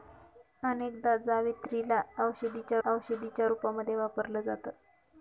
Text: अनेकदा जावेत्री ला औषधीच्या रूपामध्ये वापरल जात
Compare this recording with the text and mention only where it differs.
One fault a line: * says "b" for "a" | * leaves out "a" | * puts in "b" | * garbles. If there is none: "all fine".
* puts in "औषधीच्या"